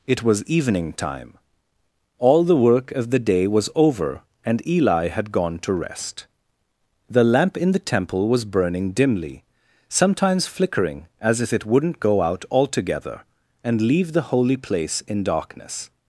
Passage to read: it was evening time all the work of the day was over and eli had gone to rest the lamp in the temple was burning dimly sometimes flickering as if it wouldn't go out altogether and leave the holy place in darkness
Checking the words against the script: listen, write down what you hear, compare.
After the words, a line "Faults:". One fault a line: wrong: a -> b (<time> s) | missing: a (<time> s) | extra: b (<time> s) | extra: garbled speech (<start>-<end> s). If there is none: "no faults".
it was evening time all the work of the day was over and eli had gone to rest the lamp in the temple was burning dimly sometimes flickering as if it wouldn't go out altogether and leave the holy place in darkness
Faults:
no faults